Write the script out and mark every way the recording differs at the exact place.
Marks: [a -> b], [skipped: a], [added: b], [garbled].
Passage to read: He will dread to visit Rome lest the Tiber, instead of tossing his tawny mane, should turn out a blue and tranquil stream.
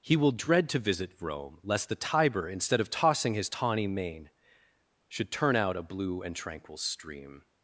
He will dread to visit Rome lest the Tiber, instead of tossing his tawny mane, should turn out a blue and tranquil stream.